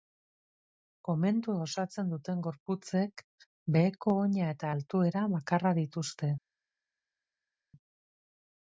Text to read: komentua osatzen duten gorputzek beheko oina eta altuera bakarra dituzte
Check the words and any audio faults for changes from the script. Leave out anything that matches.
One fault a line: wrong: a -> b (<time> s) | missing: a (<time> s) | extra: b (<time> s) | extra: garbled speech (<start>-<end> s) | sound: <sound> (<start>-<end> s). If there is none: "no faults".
no faults